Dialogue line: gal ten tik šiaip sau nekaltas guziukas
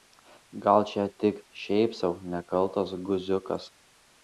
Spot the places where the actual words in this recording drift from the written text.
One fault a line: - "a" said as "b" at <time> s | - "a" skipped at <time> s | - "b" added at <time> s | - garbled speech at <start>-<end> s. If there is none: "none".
- "ten" said as "čia" at 0.9 s